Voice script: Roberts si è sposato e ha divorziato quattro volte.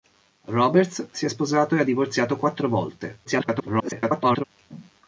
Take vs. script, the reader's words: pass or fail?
fail